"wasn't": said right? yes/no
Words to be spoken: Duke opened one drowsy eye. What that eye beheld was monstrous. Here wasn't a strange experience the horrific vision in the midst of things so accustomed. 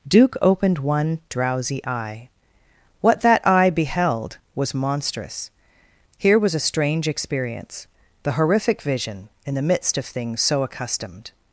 no